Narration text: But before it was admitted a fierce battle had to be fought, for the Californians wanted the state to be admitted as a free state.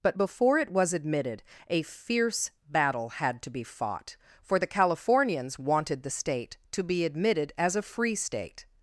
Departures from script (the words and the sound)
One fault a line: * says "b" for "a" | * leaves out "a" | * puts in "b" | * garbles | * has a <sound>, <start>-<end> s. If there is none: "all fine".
all fine